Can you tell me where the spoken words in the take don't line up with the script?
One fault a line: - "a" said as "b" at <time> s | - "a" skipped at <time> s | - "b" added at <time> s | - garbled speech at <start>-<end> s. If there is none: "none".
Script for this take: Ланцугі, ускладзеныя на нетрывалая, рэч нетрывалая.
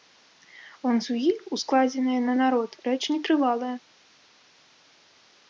- "нетрывалая" said as "народ" at 2.4 s